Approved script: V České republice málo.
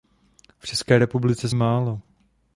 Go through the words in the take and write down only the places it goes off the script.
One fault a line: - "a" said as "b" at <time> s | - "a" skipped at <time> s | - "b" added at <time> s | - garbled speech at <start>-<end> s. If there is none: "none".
none